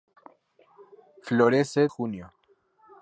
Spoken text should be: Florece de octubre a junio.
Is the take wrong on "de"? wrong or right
wrong